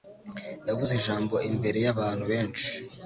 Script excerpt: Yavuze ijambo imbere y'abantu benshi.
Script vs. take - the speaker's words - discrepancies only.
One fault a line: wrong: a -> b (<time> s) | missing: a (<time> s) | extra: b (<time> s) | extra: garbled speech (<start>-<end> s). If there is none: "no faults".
no faults